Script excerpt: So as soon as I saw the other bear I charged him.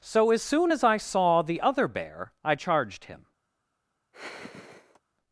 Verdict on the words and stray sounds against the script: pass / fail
fail